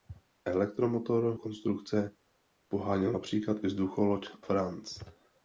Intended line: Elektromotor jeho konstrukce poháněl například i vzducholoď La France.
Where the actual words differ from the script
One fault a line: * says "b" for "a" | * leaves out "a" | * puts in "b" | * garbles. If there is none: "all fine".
* leaves out "jeho"
* leaves out "La"